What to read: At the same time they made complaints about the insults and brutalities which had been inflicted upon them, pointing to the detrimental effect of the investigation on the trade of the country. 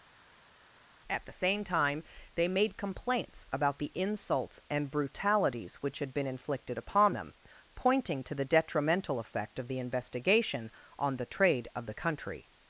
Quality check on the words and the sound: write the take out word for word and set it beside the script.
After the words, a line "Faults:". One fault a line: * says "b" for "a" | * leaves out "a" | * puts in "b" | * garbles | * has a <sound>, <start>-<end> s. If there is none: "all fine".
At the same time they made complaints about the insults and brutalities which had been inflicted upon them, pointing to the detrimental effect of the investigation on the trade of the country.
Faults:
all fine